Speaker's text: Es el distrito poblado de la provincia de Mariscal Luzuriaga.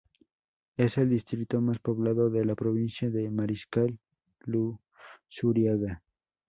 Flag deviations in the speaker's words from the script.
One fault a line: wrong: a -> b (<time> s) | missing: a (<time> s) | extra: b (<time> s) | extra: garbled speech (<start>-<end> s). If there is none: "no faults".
extra: más (1.6 s)